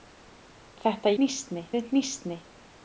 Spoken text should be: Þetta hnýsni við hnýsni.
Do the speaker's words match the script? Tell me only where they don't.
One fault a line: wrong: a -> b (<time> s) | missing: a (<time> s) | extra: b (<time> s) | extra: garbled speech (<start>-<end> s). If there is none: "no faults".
no faults